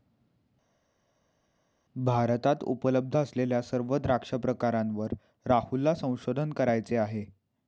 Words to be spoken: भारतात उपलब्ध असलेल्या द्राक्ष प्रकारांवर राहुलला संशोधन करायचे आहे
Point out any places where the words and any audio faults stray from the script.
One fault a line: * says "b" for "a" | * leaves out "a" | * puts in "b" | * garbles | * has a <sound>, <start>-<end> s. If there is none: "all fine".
* puts in "सर्व"